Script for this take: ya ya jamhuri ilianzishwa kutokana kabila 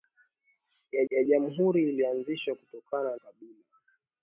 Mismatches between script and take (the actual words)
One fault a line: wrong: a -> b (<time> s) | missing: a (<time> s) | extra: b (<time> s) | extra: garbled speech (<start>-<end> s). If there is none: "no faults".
no faults